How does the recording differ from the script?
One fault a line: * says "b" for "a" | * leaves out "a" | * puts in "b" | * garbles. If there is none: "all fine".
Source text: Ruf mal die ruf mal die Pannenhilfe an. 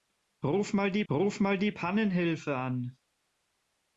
all fine